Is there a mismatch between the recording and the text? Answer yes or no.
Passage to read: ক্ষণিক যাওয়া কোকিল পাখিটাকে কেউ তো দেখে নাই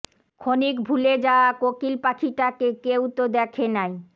yes